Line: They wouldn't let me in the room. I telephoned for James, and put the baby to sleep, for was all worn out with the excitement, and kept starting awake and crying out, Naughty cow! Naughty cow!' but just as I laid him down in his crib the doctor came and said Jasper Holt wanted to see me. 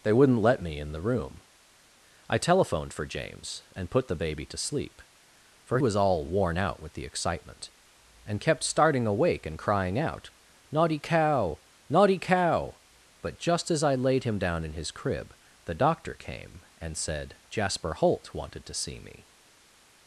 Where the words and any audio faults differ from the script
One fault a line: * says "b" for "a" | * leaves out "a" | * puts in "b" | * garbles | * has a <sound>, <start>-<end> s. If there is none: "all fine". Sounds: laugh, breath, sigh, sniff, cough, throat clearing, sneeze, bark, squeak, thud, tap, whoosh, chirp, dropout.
all fine